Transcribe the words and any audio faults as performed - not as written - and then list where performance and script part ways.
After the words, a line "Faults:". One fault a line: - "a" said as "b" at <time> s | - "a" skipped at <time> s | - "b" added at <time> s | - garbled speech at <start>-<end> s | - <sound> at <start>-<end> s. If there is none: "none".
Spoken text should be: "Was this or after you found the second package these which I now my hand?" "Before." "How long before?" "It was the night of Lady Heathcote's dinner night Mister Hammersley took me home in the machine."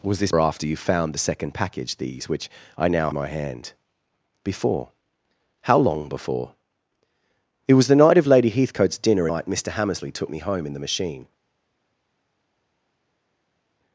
"Was this or after you found the second package these which I now my hand?" "Before." "How long before?" "It was the night of Lady Heathcote's dinner night Mister Hammersley took me home in the machine."
Faults:
none